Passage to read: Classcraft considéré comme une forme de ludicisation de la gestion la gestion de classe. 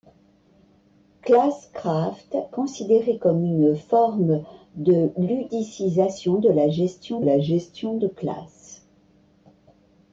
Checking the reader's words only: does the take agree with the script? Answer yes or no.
yes